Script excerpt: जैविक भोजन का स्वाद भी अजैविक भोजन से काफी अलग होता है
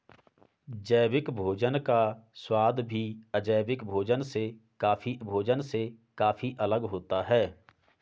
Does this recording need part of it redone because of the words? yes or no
yes